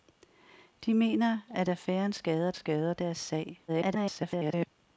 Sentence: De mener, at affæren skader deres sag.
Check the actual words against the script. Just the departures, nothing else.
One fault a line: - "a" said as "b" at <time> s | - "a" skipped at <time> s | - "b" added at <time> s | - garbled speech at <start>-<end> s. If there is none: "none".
- "skader" added at 2.5 s
- garbled speech at 3.7-4.7 s